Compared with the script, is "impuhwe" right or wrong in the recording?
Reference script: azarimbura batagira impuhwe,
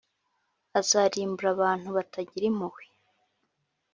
right